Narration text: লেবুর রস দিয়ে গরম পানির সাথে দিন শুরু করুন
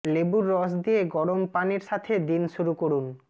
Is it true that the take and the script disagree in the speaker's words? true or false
false